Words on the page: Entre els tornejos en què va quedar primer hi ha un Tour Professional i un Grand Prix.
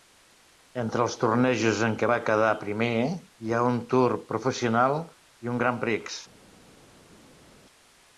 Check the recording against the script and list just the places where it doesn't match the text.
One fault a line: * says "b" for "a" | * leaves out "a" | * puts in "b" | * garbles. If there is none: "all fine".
all fine